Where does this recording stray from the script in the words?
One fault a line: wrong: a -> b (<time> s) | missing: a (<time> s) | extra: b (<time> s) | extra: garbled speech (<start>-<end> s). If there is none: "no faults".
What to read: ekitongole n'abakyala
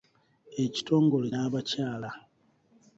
no faults